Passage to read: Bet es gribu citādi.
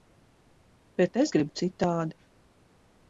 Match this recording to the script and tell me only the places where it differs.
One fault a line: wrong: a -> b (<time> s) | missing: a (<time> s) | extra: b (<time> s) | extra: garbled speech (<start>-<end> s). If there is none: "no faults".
no faults